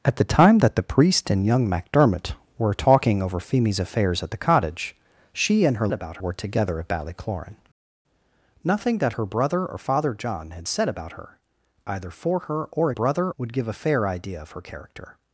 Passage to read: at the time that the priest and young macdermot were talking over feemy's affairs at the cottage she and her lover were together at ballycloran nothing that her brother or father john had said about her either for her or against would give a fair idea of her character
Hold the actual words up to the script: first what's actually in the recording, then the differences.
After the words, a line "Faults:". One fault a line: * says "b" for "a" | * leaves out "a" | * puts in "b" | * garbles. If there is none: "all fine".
at the time that the priest and young macdermot were talking over feemy's affairs at the cottage she and her about were together at ballycloran nothing that her brother or father john had said about her either for her or brother would give a fair idea of her character
Faults:
* says "about" for "lover"
* says "brother" for "against"